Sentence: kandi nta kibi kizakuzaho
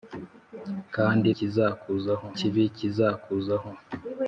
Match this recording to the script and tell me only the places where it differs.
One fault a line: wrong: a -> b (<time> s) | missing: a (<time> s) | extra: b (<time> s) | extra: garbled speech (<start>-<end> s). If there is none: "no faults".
wrong: nta -> kizakuzaho (1.4 s)